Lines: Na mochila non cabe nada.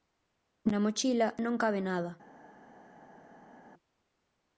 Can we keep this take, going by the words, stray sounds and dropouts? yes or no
yes